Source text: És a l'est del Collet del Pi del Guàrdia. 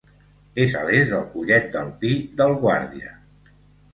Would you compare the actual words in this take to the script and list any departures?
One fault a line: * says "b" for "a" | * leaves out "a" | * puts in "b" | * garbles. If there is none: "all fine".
all fine